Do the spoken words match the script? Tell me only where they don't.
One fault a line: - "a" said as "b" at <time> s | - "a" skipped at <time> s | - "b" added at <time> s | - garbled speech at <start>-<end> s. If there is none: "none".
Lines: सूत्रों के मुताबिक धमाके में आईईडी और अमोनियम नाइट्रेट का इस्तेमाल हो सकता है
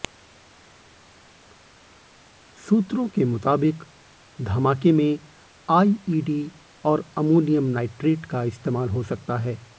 none